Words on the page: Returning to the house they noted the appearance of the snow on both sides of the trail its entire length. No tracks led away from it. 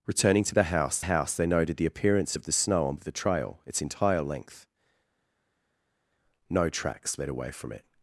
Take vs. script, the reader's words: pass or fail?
fail